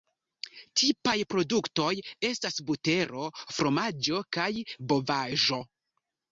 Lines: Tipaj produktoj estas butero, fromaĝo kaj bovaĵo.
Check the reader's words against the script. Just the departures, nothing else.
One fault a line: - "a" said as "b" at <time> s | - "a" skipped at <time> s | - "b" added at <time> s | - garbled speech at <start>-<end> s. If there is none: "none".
none